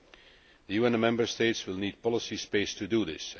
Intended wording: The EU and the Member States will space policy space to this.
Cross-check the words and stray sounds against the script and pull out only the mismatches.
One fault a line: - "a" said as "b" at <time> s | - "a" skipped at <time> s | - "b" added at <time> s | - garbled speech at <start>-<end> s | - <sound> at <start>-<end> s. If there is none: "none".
- "space" said as "need" at 1.8 s
- "do" added at 2.8 s